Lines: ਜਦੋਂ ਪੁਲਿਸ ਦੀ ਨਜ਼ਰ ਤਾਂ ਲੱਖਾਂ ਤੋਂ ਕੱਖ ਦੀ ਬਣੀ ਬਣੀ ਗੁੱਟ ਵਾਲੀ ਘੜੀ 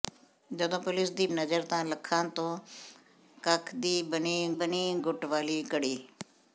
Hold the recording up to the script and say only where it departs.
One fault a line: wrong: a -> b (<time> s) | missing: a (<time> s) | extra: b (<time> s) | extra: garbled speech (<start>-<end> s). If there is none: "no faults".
no faults